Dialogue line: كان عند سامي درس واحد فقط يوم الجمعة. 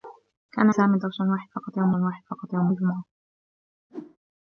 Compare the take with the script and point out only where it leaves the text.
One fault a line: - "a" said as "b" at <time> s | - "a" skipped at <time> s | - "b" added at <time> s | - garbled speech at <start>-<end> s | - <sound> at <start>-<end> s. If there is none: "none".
- "عند" skipped at 0.7 s
- "واحد فقط يوم" added at 1.9 s
- whoosh at 3.9-4.2 s